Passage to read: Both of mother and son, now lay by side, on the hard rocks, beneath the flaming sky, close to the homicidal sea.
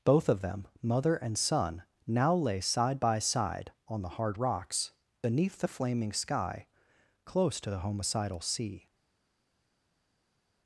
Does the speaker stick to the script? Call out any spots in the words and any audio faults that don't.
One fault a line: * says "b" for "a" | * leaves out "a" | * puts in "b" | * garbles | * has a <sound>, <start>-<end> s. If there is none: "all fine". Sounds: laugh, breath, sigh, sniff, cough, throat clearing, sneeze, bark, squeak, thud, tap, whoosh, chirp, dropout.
* puts in "them"
* puts in "side"